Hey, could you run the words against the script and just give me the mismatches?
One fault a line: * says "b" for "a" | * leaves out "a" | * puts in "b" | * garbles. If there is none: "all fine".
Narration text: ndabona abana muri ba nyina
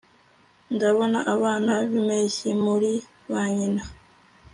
* puts in "b'impeshyi"